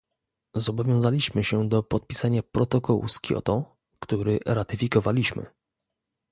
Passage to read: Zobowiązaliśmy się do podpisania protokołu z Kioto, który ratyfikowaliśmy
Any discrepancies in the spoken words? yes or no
no